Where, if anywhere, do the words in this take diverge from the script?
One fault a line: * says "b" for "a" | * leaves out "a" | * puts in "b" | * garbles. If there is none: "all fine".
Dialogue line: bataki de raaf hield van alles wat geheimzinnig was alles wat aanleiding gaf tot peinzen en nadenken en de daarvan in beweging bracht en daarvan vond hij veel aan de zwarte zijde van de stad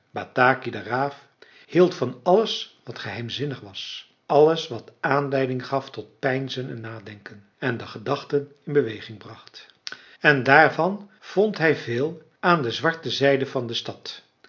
* says "gedachten" for "daarvan"